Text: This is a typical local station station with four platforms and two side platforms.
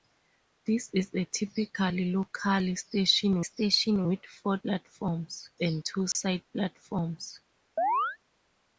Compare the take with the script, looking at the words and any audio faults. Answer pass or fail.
fail